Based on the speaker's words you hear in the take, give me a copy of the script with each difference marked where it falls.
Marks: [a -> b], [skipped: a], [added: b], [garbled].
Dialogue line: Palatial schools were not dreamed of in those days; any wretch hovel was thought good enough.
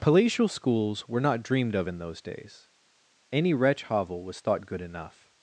Palatial schools were not dreamed of in those days; any wretch hovel was thought good enough.